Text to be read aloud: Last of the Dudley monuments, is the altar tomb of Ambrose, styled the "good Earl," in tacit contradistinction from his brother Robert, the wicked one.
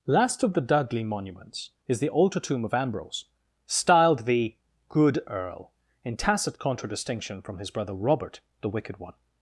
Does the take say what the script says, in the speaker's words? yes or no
yes